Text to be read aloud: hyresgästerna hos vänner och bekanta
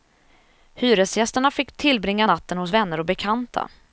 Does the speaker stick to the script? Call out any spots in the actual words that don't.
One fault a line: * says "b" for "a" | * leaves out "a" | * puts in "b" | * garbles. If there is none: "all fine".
* puts in "fick tillbringa natten"